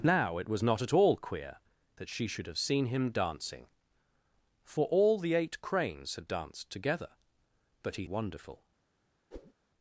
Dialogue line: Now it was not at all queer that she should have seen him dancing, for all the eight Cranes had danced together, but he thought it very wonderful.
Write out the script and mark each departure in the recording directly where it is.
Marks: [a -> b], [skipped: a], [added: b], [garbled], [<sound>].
Now it was not at all queer that she should have seen him dancing, for all the eight Cranes had danced together, but he [skipped: thought it very] wonderful. [whoosh]